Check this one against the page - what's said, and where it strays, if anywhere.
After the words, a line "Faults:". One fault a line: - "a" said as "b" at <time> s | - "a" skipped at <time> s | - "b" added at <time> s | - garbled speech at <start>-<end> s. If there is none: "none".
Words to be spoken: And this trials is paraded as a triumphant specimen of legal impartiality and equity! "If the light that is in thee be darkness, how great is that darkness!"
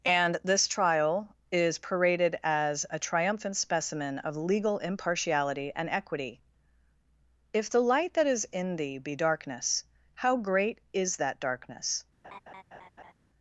And this trial is paraded as a triumphant specimen of legal impartiality and equity! "If the light that is in thee be darkness, how great is that darkness!"
Faults:
- "trials" said as "trial" at 0.7 s